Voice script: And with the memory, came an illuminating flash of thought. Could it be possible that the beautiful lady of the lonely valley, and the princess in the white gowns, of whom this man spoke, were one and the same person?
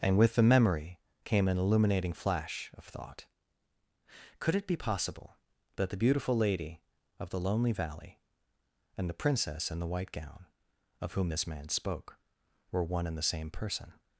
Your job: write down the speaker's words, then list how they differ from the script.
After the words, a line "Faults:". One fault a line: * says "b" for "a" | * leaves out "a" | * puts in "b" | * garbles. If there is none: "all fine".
And with the memory, came an illuminating flash of thought. Could it be possible that the beautiful lady of the lonely valley, and the princess in the white gown, of whom this man spoke, were one and the same person?
Faults:
* says "gown" for "gowns"